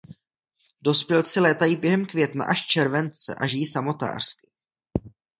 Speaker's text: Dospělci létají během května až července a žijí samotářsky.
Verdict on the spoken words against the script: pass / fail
pass